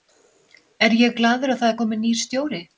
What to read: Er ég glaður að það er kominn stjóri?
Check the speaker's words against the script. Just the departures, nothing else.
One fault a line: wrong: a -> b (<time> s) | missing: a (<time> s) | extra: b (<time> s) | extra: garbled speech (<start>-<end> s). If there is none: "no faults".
extra: nýr (2.1 s)